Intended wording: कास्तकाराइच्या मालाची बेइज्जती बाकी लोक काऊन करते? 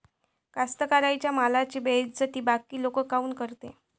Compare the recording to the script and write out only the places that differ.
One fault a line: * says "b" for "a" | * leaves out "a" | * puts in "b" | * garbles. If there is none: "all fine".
all fine